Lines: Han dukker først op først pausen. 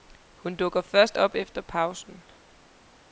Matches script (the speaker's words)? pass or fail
fail